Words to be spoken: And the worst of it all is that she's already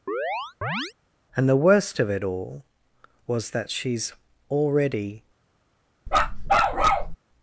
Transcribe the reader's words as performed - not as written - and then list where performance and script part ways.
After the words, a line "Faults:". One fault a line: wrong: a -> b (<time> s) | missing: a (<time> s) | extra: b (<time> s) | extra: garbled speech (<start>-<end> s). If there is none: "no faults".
And the worst of it all was that she's already
Faults:
wrong: is -> was (3.3 s)